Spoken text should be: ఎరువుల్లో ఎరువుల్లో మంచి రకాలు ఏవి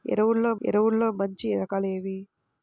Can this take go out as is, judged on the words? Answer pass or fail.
pass